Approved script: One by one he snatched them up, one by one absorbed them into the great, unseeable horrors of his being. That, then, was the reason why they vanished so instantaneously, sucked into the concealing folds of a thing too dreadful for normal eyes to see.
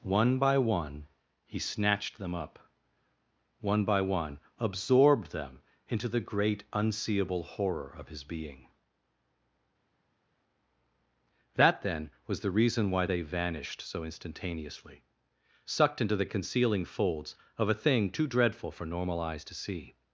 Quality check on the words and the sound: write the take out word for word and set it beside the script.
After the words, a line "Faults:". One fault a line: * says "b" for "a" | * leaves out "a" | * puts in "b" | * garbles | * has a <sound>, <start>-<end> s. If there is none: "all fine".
One by one he snatched them up, one by one absorbed them into the great, unseeable horror of his being. That, then, was the reason why they vanished so instantaneously, sucked into the concealing folds of a thing too dreadful for normal eyes to see.
Faults:
* says "horror" for "horrors"